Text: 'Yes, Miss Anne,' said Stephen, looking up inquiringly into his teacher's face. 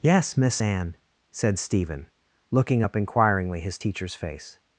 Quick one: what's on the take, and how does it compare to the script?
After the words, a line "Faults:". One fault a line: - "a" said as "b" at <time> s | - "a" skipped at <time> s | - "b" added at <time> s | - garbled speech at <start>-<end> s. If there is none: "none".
'Yes, Miss Anne,' said Stephen, looking up inquiringly his teacher's face.
Faults:
- "into" skipped at 3.6 s